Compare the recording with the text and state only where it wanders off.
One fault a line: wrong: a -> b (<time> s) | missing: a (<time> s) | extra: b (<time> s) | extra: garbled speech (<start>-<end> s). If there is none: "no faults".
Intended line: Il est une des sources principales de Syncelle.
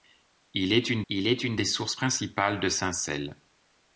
extra: il est une (1.1 s)